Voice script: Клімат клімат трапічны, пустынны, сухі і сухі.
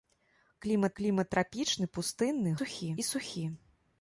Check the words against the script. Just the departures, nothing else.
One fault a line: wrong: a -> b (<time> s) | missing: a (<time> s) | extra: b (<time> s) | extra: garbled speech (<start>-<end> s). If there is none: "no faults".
no faults